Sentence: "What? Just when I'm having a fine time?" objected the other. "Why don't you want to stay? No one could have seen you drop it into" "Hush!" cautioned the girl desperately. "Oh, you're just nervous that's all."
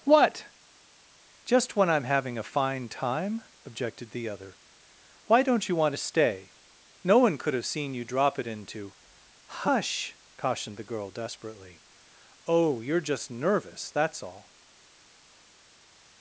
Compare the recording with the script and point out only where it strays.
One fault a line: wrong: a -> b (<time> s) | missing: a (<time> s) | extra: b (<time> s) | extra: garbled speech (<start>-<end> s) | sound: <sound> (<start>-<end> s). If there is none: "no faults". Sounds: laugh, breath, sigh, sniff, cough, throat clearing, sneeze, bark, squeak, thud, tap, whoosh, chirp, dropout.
no faults